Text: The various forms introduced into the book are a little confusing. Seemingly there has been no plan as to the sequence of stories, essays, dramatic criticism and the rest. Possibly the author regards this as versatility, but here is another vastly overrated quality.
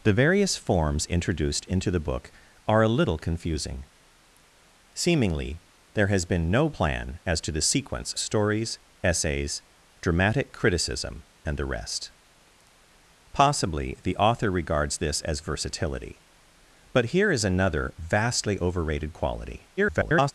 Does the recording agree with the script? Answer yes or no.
no